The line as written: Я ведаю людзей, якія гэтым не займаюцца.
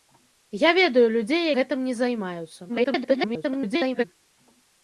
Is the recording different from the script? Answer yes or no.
yes